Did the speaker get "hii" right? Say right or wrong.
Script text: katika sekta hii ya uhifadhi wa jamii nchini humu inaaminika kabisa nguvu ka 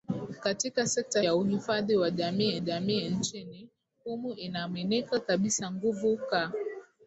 wrong